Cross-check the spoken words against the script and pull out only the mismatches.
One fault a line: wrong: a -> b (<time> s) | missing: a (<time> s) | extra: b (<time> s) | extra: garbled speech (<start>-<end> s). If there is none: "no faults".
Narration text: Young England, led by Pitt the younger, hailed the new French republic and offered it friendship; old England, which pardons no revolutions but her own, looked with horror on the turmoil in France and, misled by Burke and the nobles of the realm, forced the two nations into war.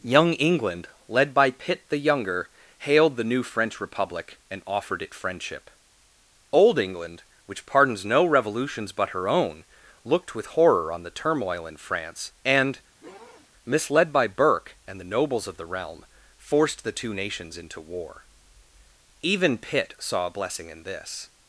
extra: Even Pitt saw a blessing in this (19.2 s)